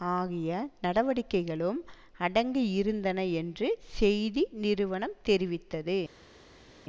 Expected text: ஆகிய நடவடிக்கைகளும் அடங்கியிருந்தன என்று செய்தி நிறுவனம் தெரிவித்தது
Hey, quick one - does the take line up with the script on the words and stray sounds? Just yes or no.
yes